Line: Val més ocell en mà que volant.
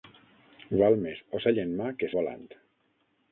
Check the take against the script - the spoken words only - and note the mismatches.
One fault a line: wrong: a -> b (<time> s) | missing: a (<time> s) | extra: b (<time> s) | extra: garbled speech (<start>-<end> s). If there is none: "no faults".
no faults